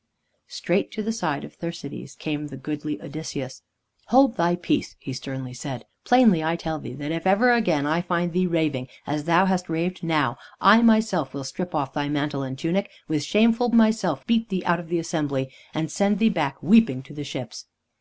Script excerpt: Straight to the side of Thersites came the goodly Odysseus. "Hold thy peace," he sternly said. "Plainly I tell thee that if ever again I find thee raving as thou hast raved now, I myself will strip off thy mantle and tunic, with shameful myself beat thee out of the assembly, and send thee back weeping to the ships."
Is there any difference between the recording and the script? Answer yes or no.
no